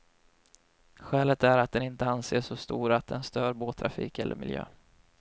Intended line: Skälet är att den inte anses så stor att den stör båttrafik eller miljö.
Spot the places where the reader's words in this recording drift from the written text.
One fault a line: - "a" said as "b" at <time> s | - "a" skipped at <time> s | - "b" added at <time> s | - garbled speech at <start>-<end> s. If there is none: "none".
none